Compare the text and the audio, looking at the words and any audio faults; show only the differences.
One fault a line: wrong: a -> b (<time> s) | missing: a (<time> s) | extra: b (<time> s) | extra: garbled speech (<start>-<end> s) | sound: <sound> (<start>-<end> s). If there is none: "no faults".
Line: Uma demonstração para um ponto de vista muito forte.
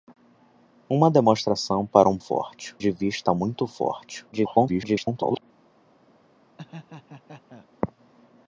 wrong: ponto -> forte (2.2 s)
extra: garbled speech (4.3-5.4 s)
sound: laugh (6.6-7.7 s)